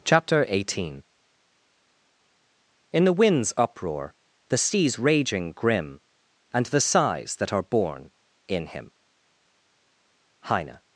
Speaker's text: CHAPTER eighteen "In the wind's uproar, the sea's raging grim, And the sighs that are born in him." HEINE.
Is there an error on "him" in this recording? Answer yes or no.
no